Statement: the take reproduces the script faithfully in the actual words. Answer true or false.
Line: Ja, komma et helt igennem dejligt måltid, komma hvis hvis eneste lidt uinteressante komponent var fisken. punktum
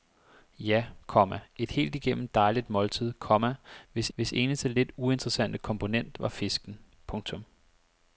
true